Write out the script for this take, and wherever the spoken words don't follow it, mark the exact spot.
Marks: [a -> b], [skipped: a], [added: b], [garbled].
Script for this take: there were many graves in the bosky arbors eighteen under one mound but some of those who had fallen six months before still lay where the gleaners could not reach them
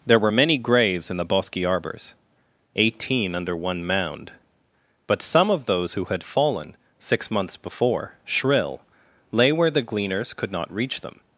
there were many graves in the bosky arbors eighteen under one mound but some of those who had fallen six months before [still -> shrill] lay where the gleaners could not reach them